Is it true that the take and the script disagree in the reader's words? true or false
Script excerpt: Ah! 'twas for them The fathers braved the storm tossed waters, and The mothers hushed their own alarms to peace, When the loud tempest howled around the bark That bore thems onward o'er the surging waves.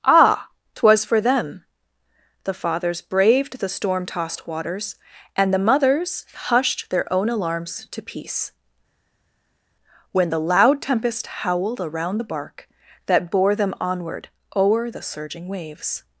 true